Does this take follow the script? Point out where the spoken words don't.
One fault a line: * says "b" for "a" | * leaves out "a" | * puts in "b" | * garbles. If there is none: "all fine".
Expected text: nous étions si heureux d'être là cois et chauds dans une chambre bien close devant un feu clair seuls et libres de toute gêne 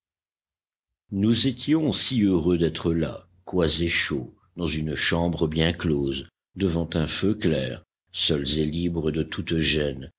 all fine